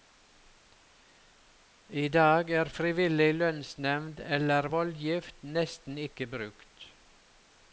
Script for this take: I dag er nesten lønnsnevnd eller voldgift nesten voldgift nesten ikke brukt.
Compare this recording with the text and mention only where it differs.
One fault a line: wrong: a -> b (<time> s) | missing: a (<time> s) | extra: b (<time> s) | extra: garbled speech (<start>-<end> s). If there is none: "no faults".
wrong: nesten -> frivillig (2.8 s)
missing: voldgift nesten (6.0 s)